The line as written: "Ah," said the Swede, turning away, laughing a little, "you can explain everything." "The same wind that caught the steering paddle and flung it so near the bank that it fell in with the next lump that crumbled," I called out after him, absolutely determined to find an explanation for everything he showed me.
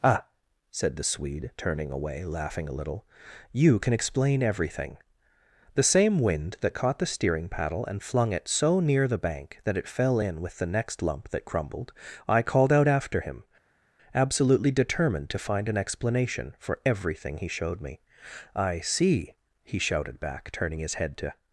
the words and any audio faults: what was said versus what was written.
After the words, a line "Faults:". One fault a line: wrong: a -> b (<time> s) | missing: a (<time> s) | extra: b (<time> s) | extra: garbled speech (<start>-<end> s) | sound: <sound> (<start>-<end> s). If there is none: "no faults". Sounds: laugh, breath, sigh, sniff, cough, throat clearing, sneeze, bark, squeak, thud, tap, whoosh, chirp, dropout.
"Ah," said the Swede, turning away, laughing a little, "you can explain everything." "The same wind that caught the steering paddle and flung it so near the bank that it fell in with the next lump that crumbled," I called out after him, absolutely determined to find an explanation for everything he showed me. "I see," he shouted back, turning his head to
Faults:
extra: I see he shouted back turning his head to (18.5 s)